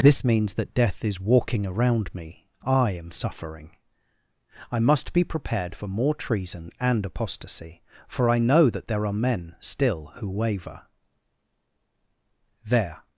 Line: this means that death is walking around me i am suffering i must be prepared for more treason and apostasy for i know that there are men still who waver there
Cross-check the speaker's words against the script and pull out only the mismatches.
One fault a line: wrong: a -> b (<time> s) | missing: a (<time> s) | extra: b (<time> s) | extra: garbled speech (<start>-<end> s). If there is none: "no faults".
no faults